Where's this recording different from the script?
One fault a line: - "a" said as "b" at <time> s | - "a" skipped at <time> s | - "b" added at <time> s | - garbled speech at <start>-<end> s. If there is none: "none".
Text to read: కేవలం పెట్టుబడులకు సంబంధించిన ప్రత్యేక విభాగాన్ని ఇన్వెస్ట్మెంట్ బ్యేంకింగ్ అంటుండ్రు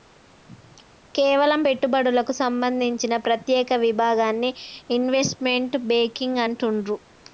none